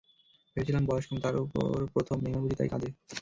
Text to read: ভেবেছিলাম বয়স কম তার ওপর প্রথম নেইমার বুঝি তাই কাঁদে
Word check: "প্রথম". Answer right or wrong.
right